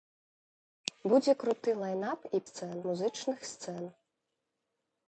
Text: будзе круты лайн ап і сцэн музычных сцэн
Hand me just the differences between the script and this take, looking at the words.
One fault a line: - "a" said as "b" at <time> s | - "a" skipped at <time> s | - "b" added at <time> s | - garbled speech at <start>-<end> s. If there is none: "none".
none